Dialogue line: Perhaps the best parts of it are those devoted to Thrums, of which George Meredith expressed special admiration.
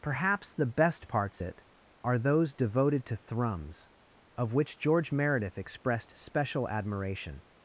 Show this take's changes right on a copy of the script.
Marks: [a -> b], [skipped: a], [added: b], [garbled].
Perhaps the best parts [skipped: of] it are those devoted to Thrums, of which George Meredith expressed special admiration.